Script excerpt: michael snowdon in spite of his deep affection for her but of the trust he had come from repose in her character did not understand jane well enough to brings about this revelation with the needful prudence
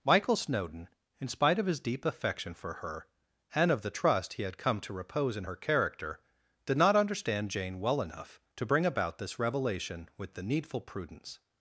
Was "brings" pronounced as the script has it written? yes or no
no